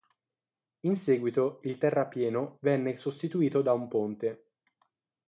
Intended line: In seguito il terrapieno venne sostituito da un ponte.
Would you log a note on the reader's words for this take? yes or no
no